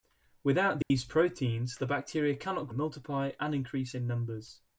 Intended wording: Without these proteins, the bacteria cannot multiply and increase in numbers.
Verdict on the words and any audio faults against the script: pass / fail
fail